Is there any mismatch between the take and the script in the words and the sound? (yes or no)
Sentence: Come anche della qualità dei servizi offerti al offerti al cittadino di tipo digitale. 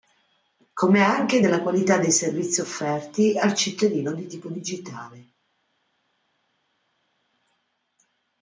yes